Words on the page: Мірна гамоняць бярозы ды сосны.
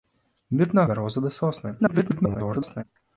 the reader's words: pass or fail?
fail